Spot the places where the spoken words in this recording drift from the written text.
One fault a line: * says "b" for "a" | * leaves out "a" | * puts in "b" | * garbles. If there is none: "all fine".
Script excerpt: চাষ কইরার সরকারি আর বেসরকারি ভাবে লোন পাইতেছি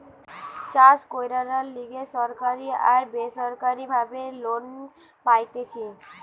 * puts in "লিগে"